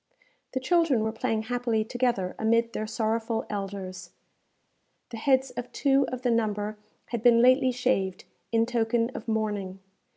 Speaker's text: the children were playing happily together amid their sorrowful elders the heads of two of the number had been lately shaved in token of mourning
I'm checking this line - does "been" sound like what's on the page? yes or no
yes